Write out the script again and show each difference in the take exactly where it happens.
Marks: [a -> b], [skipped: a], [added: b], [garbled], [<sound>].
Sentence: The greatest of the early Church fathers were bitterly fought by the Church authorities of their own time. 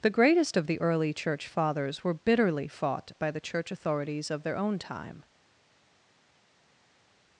The greatest of the early Church fathers were bitterly fought by the Church authorities of their own time.